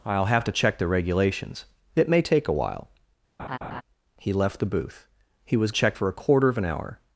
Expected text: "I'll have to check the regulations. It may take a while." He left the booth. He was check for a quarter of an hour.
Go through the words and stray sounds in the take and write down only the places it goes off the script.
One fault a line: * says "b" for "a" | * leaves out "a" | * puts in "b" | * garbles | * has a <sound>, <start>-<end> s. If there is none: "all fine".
* has a laugh, 3.4-3.8 s